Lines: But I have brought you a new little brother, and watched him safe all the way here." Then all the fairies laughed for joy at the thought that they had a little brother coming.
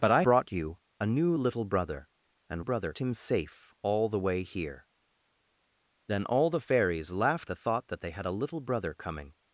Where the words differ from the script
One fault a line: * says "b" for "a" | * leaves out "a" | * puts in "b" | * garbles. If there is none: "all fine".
* leaves out "have"
* says "brother" for "watched"
* leaves out "for joy at"